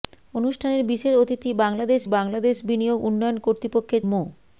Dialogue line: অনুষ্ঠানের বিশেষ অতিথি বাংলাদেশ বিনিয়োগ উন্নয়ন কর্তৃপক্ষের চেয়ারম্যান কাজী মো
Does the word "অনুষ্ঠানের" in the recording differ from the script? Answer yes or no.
no